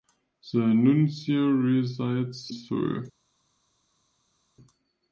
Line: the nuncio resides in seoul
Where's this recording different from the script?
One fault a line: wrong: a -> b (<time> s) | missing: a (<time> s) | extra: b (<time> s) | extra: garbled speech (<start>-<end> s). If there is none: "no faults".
missing: in (2.5 s)